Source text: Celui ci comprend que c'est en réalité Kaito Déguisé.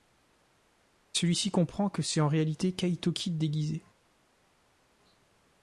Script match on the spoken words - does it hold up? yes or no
no